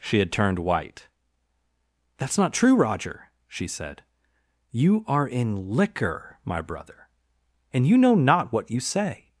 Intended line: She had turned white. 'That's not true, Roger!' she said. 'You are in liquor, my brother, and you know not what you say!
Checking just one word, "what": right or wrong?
right